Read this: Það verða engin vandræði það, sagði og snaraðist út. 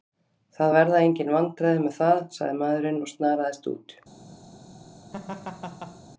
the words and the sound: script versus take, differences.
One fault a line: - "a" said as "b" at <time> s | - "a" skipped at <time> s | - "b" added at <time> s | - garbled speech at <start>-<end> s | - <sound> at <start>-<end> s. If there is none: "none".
- "með" added at 1.9 s
- "maðurinn" added at 2.6 s
- laugh at 5.1-6.0 s